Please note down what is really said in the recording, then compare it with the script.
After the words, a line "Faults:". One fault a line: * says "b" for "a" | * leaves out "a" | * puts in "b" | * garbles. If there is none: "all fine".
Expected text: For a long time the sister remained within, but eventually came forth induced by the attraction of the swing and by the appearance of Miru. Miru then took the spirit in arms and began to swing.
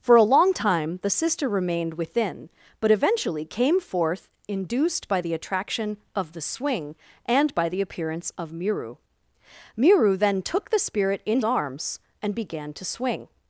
For a long time the sister remained within, but eventually came forth induced by the attraction of the swing and by the appearance of Miru. Miru then took the spirit in arms and began to swing.
Faults:
all fine